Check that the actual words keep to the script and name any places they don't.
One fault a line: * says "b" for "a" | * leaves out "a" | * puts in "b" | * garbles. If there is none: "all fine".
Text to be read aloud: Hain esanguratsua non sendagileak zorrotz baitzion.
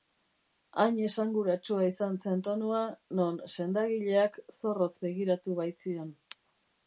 * puts in "izan zen tonua"
* puts in "begiratu"